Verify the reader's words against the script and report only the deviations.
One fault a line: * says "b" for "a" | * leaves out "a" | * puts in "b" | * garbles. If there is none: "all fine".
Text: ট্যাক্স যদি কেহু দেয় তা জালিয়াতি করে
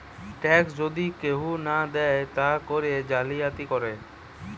* puts in "না"
* puts in "করে"